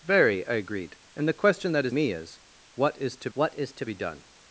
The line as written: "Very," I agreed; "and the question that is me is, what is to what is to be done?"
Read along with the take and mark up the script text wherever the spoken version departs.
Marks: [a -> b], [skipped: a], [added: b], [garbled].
"Very," I agreed; "and the question that is me is, what is to what is to be done?"